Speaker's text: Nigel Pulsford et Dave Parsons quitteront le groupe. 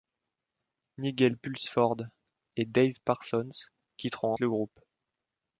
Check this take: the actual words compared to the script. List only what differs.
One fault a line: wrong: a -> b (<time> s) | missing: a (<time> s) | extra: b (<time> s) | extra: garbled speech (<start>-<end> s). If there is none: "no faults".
no faults